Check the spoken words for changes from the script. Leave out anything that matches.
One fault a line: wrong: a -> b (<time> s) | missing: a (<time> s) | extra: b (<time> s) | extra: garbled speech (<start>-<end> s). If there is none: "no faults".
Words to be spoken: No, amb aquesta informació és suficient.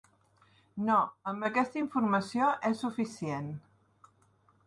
no faults